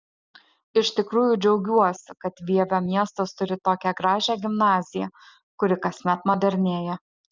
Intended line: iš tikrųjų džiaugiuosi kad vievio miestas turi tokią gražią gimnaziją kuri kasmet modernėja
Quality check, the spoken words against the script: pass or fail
pass